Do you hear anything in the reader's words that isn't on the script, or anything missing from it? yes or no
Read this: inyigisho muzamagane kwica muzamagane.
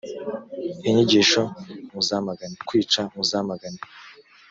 no